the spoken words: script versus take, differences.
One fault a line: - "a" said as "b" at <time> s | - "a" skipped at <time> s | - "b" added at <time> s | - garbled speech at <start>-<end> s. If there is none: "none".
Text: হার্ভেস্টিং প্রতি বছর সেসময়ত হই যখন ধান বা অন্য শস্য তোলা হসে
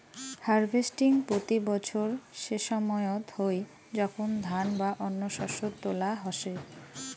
none